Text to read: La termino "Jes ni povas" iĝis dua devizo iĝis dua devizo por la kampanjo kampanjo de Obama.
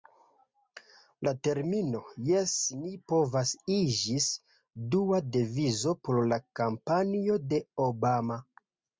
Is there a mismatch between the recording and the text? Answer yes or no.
yes